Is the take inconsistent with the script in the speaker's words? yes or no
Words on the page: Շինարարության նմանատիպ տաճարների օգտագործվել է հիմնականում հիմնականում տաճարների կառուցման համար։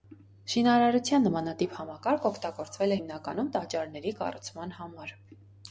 yes